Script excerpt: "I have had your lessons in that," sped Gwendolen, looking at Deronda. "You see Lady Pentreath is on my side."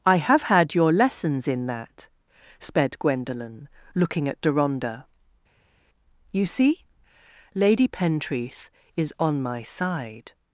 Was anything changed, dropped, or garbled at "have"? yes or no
no